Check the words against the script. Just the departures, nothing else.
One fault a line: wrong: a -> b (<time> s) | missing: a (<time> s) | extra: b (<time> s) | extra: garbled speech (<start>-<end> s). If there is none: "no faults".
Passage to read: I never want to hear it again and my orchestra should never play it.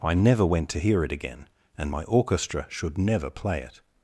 wrong: want -> went (0.5 s)